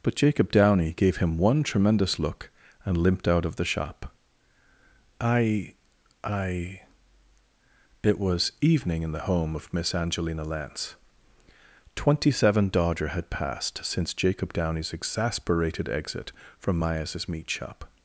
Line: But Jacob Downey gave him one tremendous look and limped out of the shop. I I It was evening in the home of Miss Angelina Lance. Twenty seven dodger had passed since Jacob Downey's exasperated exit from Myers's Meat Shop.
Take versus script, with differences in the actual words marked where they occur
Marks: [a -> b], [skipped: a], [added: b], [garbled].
But Jacob Downey gave him one tremendous look and limped out of the shop. I I It was evening in the home of Miss Angelina Lance. Twenty seven dodger had passed since Jacob Downey's exasperated exit from Myers's Meat Shop.